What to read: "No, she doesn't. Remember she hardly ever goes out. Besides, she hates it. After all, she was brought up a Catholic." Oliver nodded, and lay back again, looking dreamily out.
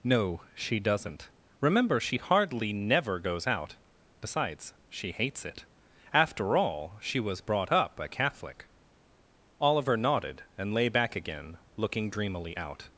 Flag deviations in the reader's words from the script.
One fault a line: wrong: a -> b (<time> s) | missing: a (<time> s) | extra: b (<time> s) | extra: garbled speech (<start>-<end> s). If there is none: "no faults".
wrong: ever -> never (2.7 s)